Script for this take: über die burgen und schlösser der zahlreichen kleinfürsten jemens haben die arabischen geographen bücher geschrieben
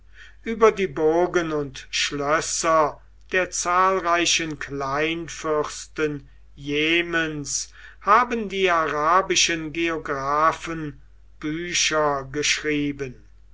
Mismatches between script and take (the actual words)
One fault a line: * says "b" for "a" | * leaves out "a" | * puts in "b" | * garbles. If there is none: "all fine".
all fine